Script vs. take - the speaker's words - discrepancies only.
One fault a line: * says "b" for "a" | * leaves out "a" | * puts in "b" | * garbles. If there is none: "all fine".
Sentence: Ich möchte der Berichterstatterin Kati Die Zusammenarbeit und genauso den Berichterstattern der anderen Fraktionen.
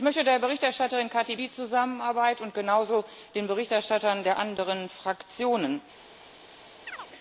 all fine